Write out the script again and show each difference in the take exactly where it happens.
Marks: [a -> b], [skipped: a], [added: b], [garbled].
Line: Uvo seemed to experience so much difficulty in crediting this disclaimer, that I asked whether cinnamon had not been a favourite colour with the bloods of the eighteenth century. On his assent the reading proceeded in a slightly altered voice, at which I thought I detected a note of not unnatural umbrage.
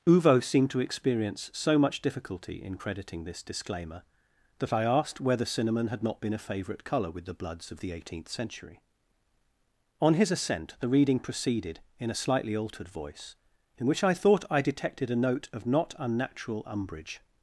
Uvo seemed to experience so much difficulty in crediting this disclaimer, that I asked whether cinnamon had not been a favourite colour with the bloods of the eighteenth century. On his assent the reading proceeded in a slightly altered voice, [at -> in] which I thought I detected a note of not unnatural umbrage.